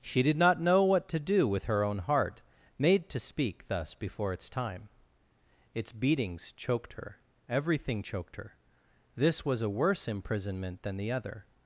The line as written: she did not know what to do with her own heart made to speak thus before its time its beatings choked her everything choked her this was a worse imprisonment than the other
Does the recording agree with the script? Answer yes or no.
yes